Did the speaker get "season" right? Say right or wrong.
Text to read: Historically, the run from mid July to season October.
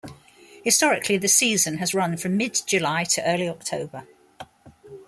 wrong